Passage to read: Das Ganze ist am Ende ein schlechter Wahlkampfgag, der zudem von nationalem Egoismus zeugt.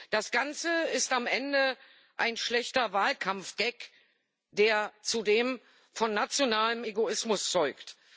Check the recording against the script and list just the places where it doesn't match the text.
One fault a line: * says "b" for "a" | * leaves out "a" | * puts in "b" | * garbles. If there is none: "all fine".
all fine